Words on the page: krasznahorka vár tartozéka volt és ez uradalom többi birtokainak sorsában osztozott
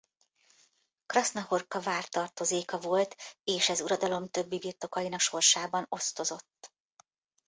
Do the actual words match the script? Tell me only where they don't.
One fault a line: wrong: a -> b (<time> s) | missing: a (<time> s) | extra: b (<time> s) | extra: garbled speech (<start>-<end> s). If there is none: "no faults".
no faults